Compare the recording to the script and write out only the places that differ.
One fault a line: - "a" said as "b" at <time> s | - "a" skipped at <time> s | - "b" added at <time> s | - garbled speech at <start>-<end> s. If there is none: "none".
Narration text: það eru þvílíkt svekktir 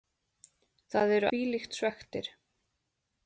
none